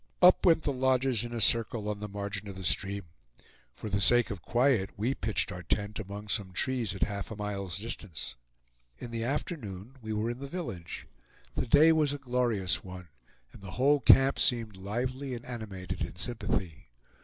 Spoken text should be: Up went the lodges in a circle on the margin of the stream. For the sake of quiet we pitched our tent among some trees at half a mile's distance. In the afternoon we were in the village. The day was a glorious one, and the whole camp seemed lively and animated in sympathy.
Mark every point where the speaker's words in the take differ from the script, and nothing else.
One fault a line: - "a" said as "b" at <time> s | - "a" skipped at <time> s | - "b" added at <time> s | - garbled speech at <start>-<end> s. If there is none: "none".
none